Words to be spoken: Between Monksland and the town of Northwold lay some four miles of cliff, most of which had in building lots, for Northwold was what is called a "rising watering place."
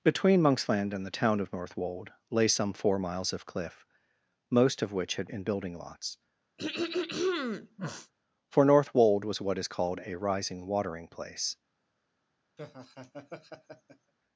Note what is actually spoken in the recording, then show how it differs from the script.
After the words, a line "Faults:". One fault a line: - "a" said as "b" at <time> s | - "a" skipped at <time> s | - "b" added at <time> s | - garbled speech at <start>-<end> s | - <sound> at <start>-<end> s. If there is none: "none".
Between Monksland and the town of Northwold lay some four miles of cliff, most of which had in building lots, for Northwold was what is called a "rising watering place."
Faults:
- throat clearing at 6.6-8.1 s
- laugh at 12.6-14.1 s